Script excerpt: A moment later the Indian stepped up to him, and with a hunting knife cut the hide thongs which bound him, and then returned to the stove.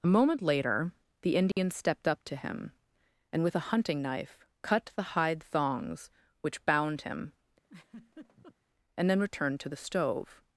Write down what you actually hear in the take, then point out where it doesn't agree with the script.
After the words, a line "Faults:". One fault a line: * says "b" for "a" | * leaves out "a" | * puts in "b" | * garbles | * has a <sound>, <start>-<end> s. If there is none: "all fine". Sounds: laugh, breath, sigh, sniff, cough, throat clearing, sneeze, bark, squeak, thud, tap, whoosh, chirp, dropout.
A moment later the Indian stepped up to him, and with a hunting knife cut the hide thongs which bound him, and then returned to the stove.
Faults:
* has a dropout, 1.5-1.6 s
* has a laugh, 7.6-8.6 s